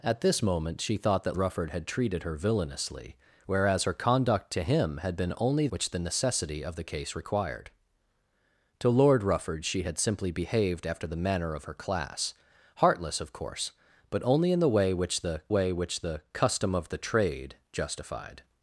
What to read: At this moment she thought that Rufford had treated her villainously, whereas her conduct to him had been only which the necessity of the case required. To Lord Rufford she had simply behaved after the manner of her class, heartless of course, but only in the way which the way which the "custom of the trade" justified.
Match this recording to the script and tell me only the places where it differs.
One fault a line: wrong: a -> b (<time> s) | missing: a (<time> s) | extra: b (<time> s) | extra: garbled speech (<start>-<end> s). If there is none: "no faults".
no faults